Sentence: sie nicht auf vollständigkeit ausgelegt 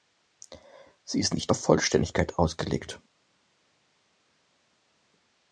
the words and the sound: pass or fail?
fail